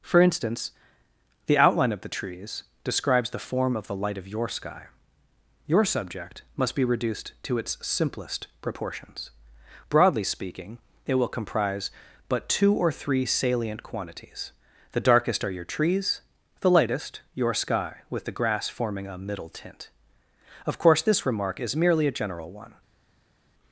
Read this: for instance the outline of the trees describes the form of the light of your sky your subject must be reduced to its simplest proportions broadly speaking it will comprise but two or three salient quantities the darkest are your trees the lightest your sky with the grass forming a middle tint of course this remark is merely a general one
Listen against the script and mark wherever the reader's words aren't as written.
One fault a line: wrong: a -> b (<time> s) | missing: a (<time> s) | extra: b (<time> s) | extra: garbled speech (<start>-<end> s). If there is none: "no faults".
no faults